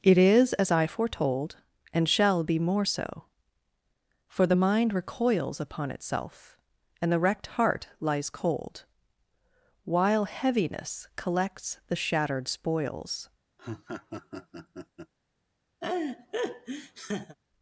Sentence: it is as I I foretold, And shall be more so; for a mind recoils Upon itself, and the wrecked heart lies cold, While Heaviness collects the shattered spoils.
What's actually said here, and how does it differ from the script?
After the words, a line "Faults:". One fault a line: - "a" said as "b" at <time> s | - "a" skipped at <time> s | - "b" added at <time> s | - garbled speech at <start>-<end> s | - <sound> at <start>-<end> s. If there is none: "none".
it is as I foretold, And shall be more so; for the mind recoils Upon itself, and the wrecked heart lies cold, While Heaviness collects the shattered spoils.
Faults:
- "I" skipped at 0.9 s
- "a" said as "the" at 4.5 s
- laugh at 13.6-15.1 s
- laugh at 15.8-17.4 s